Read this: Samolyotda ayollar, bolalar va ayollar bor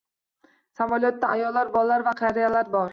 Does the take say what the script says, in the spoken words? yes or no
no